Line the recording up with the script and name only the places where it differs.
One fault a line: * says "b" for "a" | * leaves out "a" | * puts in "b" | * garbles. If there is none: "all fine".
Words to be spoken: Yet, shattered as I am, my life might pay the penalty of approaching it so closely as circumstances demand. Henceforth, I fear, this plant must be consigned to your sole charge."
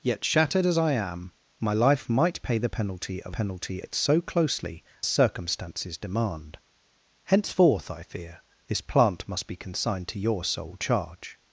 * says "penalty" for "approaching"
* leaves out "as"